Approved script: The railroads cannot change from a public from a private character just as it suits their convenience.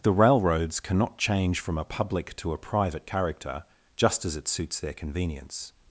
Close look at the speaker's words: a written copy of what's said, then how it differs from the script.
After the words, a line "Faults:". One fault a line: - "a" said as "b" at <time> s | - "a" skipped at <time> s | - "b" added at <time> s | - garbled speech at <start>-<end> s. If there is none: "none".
The railroads cannot change from a public to a private character just as it suits their convenience.
Faults:
- "from" said as "to" at 2.4 s